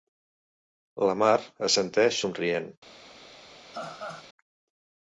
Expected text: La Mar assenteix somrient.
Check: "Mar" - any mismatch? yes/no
no